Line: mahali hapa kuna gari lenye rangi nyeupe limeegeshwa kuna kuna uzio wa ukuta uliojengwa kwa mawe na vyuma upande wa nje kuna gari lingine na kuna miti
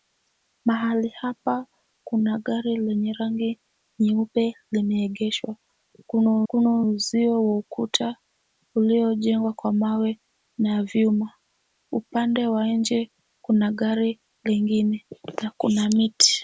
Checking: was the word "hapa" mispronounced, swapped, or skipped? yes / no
no